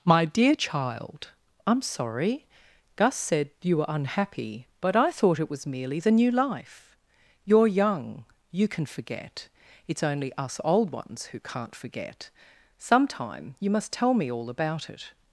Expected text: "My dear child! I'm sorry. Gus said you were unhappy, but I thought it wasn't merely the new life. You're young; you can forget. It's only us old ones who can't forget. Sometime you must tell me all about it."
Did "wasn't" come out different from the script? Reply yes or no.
yes